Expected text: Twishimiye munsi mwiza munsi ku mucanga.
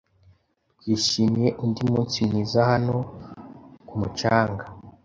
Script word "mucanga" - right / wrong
right